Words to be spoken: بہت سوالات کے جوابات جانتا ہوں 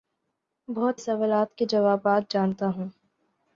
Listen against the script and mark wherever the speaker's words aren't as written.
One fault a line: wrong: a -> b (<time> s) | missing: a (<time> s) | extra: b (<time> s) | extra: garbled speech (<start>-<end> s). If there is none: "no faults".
no faults